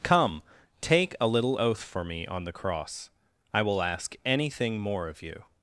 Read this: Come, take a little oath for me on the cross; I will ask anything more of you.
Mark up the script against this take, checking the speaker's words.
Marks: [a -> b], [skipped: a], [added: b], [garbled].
Come, take a little oath for me on the cross; I will ask anything more of you.